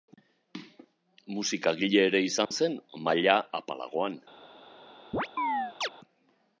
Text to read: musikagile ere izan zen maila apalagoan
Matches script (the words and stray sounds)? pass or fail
fail